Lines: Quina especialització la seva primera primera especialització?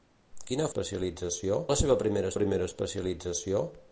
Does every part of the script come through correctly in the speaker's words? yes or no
yes